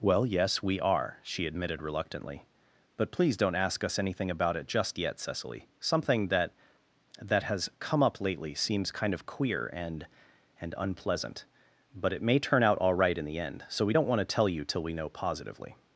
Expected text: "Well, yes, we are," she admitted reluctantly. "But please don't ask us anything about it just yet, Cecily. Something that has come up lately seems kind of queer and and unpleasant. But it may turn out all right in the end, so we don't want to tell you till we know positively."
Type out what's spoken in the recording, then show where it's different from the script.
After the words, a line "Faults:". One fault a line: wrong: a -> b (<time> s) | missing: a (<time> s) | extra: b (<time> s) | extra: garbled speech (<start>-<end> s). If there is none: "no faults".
"Well, yes, we are," she admitted reluctantly. "But please don't ask us anything about it just yet, Cecily. Something that that has come up lately seems kind of queer and and unpleasant. But it may turn out all right in the end, so we don't want to tell you till we know positively."
Faults:
extra: that (7.2 s)